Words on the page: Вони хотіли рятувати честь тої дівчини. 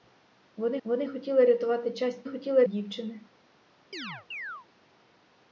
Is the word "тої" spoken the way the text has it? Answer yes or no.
no